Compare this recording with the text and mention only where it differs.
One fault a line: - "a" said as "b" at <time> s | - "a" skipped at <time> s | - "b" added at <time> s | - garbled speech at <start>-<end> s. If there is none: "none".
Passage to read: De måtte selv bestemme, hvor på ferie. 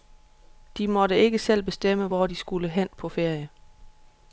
- "ikke" added at 1.2 s
- "de skulle hen" added at 2.2 s